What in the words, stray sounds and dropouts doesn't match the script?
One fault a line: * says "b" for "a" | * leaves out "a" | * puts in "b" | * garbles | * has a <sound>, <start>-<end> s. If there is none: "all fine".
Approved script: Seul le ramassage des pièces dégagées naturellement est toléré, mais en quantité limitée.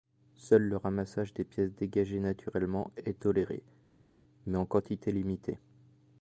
all fine